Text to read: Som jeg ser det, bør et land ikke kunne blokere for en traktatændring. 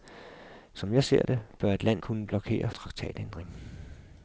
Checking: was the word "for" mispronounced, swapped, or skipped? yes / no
yes